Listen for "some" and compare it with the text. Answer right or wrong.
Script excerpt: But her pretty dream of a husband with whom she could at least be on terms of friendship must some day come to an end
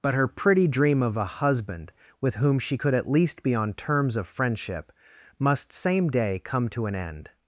wrong